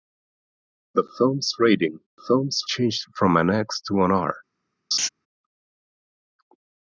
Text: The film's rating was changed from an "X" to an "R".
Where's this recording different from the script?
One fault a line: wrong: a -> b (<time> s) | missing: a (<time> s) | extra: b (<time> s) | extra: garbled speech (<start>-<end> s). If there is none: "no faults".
wrong: was -> film's (2.2 s)